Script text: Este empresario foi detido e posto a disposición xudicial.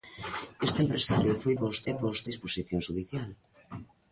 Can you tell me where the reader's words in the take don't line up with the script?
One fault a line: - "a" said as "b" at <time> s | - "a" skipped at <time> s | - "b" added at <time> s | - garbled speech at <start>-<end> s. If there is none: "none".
- "detido" said as "posto" at 1.6 s
- "a" skipped at 2.3 s